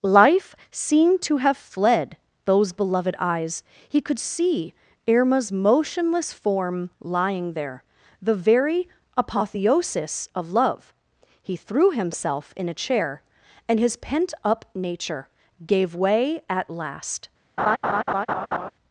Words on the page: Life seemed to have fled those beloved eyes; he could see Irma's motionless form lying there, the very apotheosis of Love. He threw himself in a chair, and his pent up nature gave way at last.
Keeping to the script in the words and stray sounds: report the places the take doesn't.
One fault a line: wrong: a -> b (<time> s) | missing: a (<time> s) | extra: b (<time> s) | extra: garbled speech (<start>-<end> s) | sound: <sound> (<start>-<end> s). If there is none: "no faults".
sound: laugh (17.6-18.7 s)